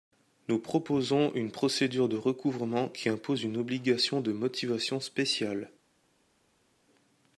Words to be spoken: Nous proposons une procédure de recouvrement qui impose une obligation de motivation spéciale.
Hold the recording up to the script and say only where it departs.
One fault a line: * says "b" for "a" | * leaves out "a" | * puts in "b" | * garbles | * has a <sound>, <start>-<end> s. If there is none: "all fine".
all fine